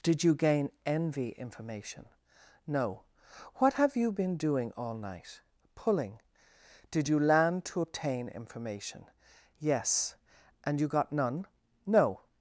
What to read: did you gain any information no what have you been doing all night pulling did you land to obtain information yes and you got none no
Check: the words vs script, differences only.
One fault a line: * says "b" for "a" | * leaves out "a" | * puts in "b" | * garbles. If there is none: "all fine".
* says "envy" for "any"